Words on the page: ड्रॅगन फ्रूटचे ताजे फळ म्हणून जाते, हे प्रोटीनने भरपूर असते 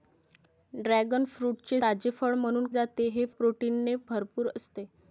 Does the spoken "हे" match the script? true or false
true